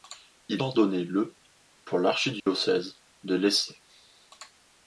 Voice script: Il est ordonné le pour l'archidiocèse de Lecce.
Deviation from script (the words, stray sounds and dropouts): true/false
true